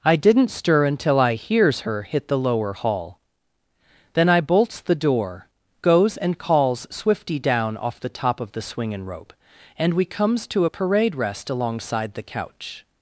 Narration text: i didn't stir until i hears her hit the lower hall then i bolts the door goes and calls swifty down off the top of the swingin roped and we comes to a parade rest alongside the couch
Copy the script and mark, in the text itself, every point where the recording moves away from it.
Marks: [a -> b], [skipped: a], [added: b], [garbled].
i didn't stir until i hears her hit the lower hall then i bolts the door goes and calls swifty down off the top of the swingin [roped -> rope] and we comes to a parade rest alongside the couch